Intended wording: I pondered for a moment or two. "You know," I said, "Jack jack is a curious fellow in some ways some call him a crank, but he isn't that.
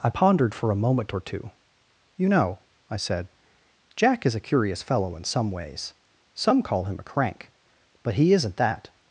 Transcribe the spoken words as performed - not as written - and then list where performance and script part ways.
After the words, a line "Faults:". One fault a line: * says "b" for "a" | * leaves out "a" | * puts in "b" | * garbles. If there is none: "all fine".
I pondered for a moment or two. "You know," I said, "Jack is a curious fellow in some ways some call him a crank, but he isn't that.
Faults:
* leaves out "jack"